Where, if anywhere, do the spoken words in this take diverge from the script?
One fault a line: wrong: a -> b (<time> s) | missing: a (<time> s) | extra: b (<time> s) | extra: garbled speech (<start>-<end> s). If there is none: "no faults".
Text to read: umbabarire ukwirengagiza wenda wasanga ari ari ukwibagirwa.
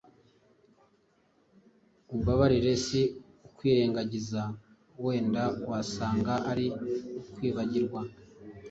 extra: si (2.8 s)
missing: ari (6.7 s)